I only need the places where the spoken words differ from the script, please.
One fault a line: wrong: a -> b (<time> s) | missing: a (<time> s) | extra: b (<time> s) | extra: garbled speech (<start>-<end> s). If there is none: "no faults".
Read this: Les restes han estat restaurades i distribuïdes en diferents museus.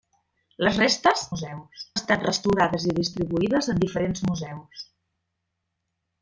wrong: han -> museus (1.3 s)